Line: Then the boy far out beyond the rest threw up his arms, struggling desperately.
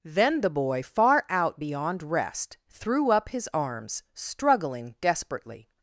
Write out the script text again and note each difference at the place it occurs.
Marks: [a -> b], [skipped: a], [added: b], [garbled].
Then the boy far out beyond [skipped: the] rest threw up his arms, struggling desperately.